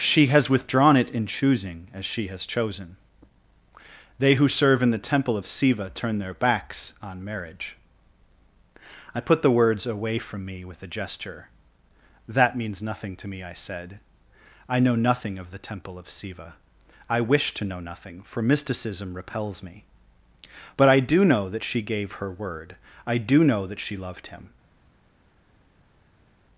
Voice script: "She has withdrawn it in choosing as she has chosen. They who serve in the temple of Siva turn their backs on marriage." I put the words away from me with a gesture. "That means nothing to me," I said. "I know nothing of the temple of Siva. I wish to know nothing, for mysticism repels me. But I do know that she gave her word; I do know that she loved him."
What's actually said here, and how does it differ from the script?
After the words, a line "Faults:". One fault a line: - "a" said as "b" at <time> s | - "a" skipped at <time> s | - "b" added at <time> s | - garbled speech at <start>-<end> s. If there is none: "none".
"She has withdrawn it in choosing as she has chosen. They who serve in the temple of Siva turn their backs on marriage." I put the words away from me with a gesture. "That means nothing to me," I said. "I know nothing of the temple of Siva. I wish to know nothing, for mysticism repels me. But I do know that she gave her word; I do know that she loved him."
Faults:
none